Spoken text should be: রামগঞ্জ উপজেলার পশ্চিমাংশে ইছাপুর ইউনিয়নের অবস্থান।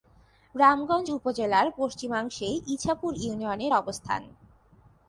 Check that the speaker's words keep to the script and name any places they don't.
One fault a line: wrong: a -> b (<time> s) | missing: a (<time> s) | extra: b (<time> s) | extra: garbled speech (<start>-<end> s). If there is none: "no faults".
no faults